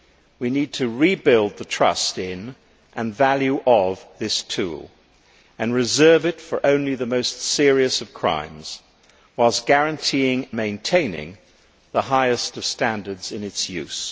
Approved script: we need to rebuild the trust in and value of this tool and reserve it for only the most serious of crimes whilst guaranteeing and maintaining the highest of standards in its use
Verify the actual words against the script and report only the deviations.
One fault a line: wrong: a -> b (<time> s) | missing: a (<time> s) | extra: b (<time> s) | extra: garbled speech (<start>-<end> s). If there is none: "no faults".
missing: and (10.5 s)